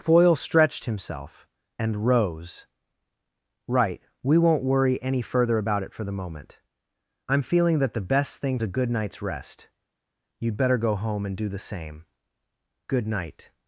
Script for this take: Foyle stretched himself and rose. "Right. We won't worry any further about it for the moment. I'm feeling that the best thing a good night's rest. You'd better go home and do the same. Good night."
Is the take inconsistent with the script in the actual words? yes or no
no